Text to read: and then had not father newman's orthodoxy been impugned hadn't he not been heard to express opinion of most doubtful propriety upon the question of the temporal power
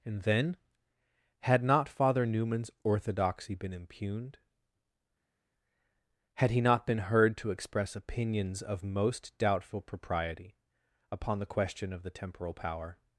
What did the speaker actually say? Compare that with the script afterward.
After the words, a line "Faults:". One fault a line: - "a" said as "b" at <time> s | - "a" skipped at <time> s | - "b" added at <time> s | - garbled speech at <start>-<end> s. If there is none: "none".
and then had not father newman's orthodoxy been impugned had he not been heard to express opinions of most doubtful propriety upon the question of the temporal power
Faults:
- "hadn't" said as "had" at 6.4 s
- "opinion" said as "opinions" at 8.0 s